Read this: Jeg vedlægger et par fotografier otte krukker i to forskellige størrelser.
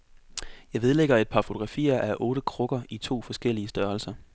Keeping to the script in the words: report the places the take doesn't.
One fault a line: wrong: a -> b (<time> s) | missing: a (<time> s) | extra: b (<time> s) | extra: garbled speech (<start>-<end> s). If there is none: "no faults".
extra: af (2.0 s)